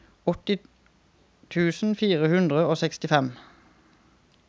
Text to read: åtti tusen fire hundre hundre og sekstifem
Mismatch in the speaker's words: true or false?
true